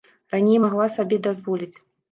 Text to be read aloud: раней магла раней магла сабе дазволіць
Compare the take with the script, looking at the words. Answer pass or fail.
fail